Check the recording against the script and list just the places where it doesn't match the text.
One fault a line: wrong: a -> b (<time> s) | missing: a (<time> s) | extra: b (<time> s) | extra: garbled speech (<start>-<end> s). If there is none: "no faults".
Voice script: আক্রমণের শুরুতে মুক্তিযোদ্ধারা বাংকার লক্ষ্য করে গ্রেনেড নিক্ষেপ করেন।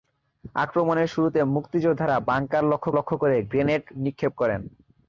extra: লক্ষ্য (3.0 s)